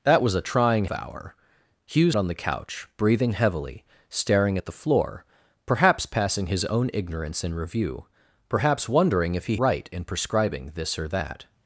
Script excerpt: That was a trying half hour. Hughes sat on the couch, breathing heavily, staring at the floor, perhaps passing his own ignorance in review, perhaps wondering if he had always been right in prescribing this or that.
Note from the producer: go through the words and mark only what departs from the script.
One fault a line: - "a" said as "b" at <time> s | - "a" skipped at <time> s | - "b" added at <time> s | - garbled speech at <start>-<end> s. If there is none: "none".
- "half" skipped at 0.8 s
- "sat" skipped at 2.2 s
- "had always been" skipped at 9.6 s